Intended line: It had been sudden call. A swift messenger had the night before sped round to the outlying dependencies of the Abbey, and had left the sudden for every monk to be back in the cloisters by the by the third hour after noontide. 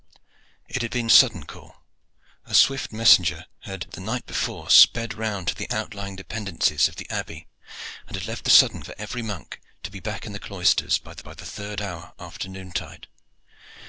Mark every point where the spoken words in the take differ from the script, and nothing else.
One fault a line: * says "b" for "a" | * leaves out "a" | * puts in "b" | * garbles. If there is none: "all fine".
all fine